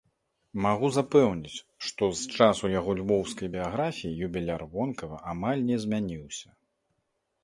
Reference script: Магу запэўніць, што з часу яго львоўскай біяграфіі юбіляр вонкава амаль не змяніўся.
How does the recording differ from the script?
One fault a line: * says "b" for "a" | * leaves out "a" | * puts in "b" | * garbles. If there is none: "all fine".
all fine